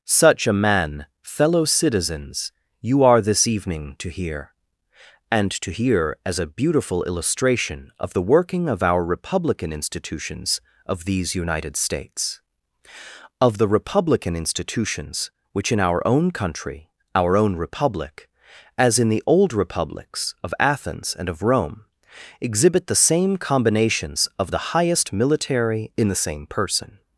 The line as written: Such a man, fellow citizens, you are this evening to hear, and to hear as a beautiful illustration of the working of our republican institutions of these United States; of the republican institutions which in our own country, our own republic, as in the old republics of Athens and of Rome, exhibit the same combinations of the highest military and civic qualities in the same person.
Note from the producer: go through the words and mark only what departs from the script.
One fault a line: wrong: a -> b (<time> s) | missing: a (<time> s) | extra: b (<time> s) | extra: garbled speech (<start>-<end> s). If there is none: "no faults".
missing: and civic qualities (25.9 s)